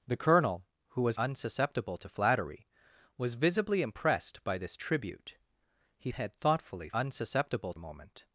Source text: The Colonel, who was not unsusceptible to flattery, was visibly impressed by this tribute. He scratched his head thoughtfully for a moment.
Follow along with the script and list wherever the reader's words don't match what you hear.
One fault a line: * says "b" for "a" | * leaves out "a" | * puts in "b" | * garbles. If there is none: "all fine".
* leaves out "not"
* leaves out "scratched his"
* says "unsusceptible" for "for"